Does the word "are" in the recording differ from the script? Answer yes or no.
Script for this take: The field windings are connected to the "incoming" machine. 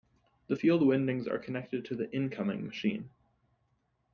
no